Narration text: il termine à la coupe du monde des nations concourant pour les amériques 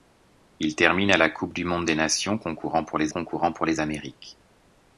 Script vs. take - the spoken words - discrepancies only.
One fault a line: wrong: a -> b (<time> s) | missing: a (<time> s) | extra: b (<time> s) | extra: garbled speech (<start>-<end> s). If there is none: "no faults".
extra: concourant pour les (3.1 s)